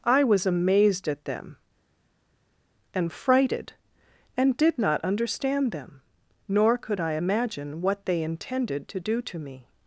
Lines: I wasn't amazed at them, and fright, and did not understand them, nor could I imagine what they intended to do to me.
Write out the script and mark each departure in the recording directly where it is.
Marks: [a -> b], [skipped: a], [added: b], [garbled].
I [wasn't -> was] amazed at them, and [fright, -> frighted] and did not understand them, nor could I imagine what they intended to do to me.